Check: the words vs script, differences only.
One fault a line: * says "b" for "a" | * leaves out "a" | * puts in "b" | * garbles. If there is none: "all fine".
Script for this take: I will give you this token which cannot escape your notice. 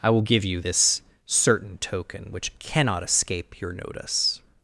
* puts in "certain"